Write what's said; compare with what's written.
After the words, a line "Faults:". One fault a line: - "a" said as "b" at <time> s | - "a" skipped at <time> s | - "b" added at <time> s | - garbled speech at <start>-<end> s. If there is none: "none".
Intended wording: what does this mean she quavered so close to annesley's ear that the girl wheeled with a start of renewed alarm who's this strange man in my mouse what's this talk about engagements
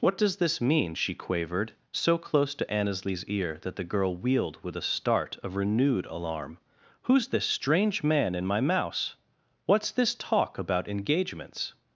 what does this mean she quavered so close to annesley's ear that the girl wheeled with a start of renewed alarm who's this strange man in my mouse what's this talk about engagements
Faults:
none